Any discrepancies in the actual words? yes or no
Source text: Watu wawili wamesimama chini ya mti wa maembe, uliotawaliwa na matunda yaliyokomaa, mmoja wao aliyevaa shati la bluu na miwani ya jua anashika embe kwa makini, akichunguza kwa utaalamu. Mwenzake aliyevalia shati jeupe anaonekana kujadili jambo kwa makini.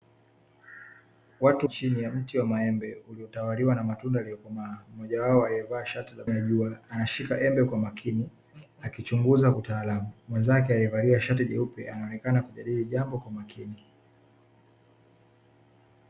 yes